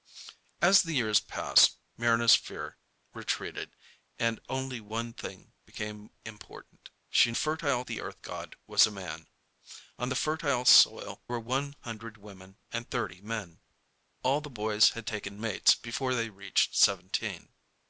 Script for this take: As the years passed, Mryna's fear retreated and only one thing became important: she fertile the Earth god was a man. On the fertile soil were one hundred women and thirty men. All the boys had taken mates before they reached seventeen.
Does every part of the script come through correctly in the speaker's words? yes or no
yes